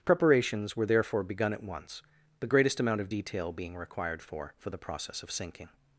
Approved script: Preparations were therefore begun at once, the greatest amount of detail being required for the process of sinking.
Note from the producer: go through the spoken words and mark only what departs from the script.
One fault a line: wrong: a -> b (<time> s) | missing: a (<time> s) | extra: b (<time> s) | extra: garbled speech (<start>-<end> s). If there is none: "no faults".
extra: for (4.6 s)